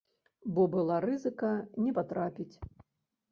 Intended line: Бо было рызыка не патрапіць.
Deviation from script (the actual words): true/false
true